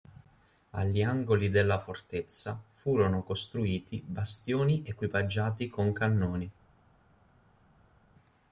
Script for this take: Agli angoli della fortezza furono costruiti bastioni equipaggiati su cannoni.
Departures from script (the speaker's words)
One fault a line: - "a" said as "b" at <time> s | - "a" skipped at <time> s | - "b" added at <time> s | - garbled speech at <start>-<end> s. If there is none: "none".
- "su" said as "con" at 5.7 s